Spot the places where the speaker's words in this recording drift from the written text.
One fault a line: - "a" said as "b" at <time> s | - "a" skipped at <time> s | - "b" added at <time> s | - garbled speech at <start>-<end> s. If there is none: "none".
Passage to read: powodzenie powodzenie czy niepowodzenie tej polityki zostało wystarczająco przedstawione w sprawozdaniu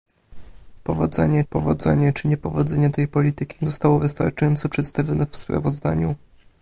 none